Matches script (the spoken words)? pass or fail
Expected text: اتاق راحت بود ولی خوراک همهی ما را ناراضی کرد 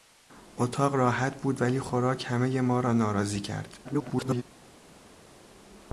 fail